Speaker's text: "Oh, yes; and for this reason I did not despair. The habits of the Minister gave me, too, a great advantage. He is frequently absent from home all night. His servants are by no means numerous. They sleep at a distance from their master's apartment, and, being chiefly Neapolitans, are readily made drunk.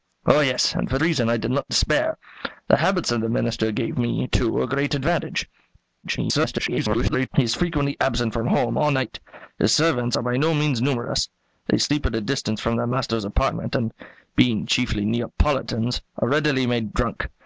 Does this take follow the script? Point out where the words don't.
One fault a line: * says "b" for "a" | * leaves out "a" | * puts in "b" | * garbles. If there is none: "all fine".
* leaves out "this"
* garbles